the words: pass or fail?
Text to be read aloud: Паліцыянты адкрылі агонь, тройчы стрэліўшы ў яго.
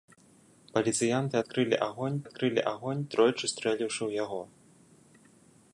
fail